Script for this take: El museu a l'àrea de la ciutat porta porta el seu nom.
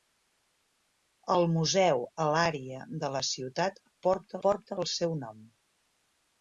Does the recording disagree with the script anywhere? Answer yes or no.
no